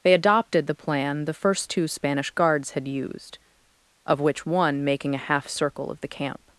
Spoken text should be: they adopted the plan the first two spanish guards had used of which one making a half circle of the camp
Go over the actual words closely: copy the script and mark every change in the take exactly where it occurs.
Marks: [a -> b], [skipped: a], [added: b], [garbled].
they adopted the plan the first two spanish guards had used of which one making a half circle of the camp